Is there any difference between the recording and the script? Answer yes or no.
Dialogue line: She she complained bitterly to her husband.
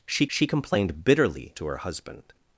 no